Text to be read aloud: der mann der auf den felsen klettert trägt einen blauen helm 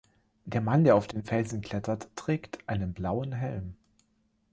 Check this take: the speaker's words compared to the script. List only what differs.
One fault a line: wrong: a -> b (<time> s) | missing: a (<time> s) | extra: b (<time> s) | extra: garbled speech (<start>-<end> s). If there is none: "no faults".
no faults